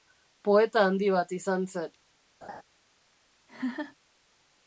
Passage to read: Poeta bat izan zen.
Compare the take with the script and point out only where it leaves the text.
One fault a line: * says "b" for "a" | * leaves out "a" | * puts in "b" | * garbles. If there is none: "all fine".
* puts in "handi"